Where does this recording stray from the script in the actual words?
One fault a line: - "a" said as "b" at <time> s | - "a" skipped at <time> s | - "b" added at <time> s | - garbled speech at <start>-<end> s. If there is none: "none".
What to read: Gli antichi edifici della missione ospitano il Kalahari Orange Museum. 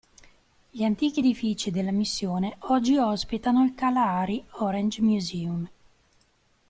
- "oggi" added at 2.6 s